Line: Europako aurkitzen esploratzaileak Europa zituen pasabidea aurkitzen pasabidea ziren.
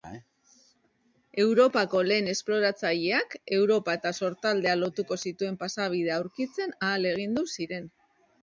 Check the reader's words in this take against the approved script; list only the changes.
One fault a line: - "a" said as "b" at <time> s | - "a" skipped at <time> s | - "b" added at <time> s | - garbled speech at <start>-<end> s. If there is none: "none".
- "aurkitzen" said as "lehen" at 2.1 s
- "eta Sortaldea lotuko" added at 4.0 s
- "pasabidea" said as "ahalegindu" at 6.9 s